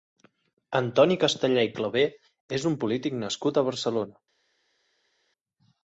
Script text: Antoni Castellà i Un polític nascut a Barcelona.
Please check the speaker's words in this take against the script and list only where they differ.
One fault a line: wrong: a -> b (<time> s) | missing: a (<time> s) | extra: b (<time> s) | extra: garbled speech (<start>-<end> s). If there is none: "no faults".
extra: Clavé és (1.8 s)